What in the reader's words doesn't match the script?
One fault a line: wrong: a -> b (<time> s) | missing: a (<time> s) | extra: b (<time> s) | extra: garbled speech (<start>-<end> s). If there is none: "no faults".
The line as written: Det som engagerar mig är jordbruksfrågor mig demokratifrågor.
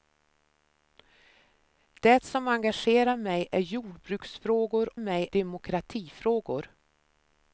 no faults